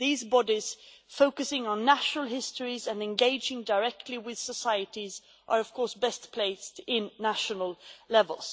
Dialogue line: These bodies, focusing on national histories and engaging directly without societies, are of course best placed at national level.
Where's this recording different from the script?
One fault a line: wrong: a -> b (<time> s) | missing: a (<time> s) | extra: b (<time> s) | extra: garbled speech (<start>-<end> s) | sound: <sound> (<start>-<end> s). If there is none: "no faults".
wrong: without -> with (4.2 s)